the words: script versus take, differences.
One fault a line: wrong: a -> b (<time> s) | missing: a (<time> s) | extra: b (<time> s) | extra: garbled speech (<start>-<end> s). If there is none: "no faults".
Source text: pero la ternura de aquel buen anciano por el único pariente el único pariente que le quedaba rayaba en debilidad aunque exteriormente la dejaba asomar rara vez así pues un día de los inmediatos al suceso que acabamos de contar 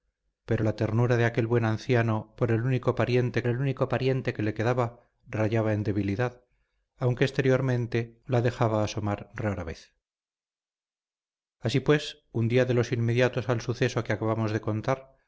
no faults